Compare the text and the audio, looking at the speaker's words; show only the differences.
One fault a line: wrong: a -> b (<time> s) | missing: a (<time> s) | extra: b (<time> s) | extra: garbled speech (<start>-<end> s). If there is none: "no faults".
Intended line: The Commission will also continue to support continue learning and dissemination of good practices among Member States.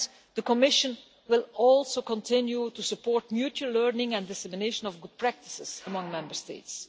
wrong: continue -> mutual (3.3 s)